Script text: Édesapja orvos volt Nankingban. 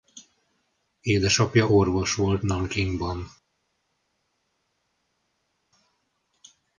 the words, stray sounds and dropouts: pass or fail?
pass